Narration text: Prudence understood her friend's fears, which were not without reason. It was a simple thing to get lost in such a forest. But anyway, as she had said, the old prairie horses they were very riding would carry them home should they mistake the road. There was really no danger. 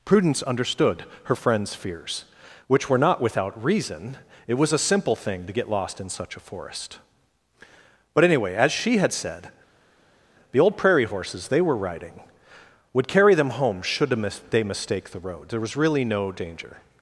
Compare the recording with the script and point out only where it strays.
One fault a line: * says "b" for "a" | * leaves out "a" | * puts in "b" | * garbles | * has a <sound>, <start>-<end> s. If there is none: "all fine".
* leaves out "very"